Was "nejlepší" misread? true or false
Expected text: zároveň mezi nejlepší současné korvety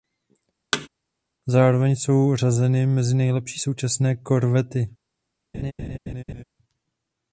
false